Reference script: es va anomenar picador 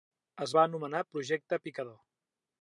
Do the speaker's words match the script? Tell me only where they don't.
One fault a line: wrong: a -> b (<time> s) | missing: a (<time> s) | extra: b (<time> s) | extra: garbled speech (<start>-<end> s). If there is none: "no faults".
extra: projecte (1.1 s)